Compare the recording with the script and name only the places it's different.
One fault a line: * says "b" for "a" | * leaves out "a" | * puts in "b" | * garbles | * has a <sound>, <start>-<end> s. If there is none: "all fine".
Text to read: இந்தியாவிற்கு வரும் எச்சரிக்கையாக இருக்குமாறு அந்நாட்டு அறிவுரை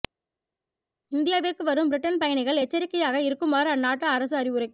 * puts in "பிரிட்டன் பயணிகள்"
* puts in "அரசு"